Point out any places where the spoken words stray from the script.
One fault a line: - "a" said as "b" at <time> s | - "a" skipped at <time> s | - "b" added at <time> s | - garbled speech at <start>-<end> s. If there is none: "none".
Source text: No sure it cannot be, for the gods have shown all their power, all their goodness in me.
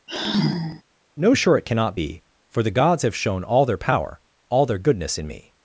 none